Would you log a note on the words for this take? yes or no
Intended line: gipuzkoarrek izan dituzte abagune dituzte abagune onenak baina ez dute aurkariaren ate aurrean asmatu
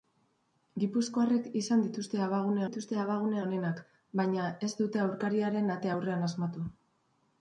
no